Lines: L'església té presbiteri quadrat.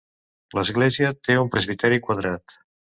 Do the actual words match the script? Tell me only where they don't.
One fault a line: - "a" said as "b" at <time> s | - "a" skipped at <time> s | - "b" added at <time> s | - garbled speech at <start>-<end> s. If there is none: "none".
- "un" added at 1.4 s